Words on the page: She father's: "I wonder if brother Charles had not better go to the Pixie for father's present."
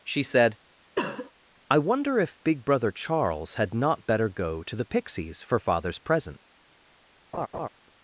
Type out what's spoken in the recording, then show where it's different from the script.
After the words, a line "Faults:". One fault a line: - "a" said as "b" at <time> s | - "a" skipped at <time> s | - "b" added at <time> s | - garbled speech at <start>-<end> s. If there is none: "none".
She said: "I wonder if big brother Charles had not better go to the Pixies for father's present."
Faults:
- "father's" said as "said" at 0.2 s
- "big" added at 2.4 s
- "Pixie" said as "Pixies" at 4.9 s